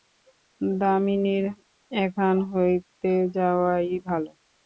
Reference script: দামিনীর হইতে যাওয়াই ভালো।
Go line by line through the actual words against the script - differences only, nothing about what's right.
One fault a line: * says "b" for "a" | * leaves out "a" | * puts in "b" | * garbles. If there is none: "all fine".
* puts in "এখান"